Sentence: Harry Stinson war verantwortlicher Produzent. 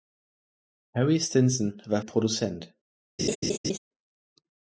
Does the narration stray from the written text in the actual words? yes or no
yes